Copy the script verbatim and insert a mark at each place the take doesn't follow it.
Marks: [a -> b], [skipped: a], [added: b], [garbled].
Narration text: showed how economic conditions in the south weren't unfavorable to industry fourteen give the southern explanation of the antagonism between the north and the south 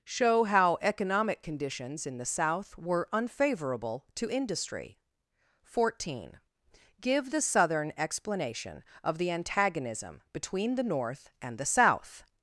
[showed -> show] how economic conditions in the south [weren't -> were] unfavorable to industry fourteen give the southern explanation of the antagonism between the north and the south